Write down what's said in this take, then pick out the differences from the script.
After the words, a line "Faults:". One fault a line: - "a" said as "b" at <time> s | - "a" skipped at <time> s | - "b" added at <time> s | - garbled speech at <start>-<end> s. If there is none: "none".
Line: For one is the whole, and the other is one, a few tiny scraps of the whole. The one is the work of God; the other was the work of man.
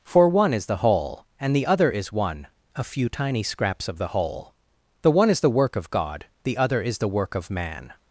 For one is the whole, and the other is one, a few tiny scraps of the whole. The one is the work of God; the other is the work of man.
Faults:
- "was" said as "is" at 6.8 s